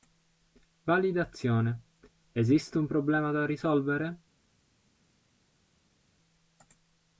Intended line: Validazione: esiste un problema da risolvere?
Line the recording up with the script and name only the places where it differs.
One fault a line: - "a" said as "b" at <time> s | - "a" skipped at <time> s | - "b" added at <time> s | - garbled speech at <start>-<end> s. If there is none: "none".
none